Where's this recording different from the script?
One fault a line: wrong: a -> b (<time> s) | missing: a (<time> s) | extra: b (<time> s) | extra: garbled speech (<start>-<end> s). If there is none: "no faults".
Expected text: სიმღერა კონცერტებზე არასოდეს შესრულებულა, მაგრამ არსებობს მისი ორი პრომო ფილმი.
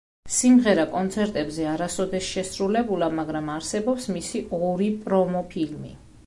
no faults